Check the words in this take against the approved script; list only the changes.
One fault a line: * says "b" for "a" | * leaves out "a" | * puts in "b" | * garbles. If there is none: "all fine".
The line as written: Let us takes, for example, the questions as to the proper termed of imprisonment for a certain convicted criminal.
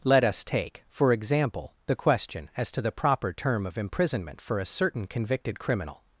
* says "take" for "takes"
* says "question" for "questions"
* says "term" for "termed"